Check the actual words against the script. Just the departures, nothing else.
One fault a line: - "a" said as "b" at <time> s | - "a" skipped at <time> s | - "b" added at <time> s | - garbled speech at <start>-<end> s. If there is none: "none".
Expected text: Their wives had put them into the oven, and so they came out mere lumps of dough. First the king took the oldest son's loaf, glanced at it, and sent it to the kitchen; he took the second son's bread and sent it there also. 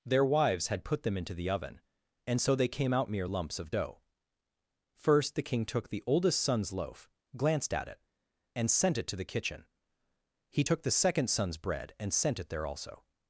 none